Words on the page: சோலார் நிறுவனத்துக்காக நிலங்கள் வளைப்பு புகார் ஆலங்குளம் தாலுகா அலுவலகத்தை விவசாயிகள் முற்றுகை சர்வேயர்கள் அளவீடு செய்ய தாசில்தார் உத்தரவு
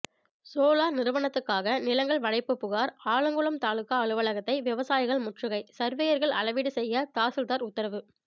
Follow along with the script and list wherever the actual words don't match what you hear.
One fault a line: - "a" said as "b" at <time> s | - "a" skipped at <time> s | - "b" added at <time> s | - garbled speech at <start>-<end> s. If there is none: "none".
none